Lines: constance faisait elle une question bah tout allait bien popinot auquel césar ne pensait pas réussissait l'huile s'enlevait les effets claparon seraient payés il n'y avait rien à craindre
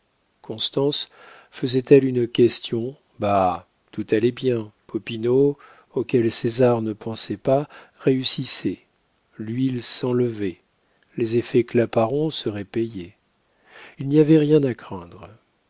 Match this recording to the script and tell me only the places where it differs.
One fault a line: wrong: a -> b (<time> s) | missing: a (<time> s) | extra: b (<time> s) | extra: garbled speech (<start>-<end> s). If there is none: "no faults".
no faults